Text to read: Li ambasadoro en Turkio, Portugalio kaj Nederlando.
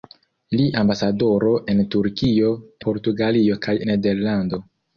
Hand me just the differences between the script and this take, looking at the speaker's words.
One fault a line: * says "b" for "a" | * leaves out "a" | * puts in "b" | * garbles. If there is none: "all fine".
all fine